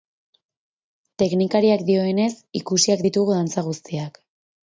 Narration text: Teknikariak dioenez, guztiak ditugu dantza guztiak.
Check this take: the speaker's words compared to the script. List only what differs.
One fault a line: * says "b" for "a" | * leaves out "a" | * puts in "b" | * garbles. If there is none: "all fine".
* says "ikusiak" for "guztiak"